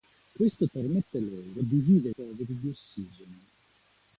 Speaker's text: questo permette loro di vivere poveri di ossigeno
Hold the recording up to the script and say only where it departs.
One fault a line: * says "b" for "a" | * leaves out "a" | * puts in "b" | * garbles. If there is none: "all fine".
all fine